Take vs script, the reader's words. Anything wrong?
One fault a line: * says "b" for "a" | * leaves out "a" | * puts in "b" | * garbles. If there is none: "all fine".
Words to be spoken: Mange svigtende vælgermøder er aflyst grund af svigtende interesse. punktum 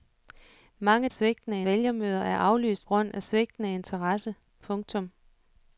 all fine